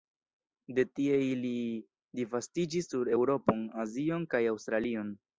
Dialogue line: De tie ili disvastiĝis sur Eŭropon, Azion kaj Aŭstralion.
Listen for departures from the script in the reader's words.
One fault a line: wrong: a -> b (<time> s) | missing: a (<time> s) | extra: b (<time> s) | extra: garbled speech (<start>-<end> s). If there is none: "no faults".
no faults